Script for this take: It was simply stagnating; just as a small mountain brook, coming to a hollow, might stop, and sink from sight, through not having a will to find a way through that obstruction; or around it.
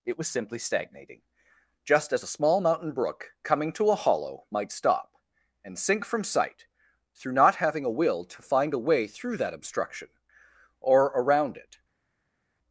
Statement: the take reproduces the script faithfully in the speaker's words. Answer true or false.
true